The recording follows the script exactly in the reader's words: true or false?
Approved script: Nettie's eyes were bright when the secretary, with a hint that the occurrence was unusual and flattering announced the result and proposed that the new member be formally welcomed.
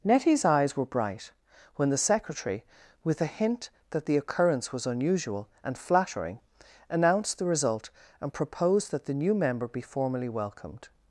true